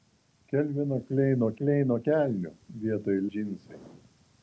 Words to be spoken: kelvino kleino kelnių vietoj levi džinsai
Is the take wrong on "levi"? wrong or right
wrong